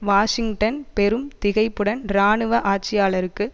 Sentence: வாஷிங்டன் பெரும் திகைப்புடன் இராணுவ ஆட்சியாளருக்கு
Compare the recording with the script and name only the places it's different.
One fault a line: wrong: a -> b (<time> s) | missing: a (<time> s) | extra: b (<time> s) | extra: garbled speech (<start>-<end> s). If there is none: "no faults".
no faults